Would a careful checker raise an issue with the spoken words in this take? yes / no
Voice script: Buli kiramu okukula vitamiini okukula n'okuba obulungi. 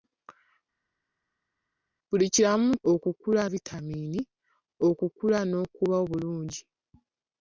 no